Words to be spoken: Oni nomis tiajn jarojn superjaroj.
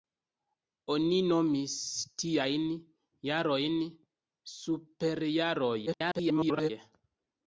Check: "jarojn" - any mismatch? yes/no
no